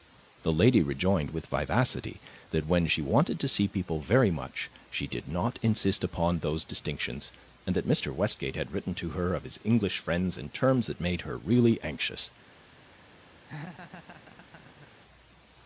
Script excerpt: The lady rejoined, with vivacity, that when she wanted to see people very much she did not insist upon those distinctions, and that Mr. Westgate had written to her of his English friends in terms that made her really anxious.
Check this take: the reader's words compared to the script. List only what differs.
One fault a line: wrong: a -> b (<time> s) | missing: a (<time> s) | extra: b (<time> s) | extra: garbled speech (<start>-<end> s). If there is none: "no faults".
no faults